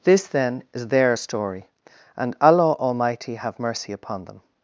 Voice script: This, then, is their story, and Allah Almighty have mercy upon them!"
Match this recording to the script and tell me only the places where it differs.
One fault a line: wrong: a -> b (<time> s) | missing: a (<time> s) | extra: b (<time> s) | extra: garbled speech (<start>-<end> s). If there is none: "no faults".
no faults